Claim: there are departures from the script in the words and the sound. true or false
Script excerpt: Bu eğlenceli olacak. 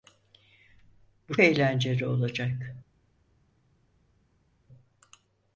false